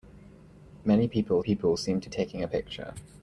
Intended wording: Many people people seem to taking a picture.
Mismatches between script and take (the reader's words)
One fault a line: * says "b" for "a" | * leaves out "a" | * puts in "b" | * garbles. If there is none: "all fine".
all fine